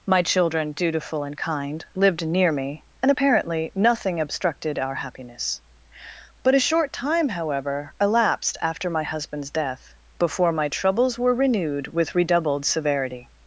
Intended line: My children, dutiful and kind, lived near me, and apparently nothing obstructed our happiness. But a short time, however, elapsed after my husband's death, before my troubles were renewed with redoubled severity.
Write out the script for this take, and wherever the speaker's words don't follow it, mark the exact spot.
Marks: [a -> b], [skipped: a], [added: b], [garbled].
My children, dutiful and kind, lived near me, and apparently nothing obstructed our happiness. But a short time, however, elapsed after my husband's death, before my troubles were renewed with redoubled severity.